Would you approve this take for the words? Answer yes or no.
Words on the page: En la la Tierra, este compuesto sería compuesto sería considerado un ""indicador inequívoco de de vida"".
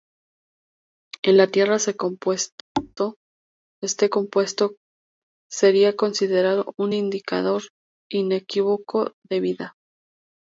no